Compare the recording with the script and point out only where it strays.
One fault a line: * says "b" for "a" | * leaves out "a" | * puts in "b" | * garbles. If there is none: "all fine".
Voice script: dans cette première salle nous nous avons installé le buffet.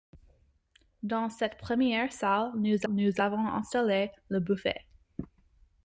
all fine